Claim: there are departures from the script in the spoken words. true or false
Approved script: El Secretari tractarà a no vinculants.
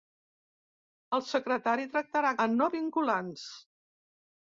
false